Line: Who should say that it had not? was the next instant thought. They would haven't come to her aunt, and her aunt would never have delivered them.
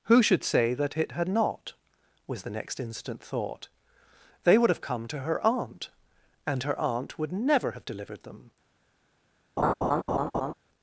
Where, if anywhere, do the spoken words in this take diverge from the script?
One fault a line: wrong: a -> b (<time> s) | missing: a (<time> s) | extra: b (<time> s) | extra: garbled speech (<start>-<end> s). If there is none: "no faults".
wrong: haven't -> have (4.7 s)